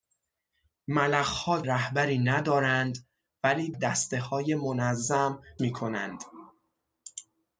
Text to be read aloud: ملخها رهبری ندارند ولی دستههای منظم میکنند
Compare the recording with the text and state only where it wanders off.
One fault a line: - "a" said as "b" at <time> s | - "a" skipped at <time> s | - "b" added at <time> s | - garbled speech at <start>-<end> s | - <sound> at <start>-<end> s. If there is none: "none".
none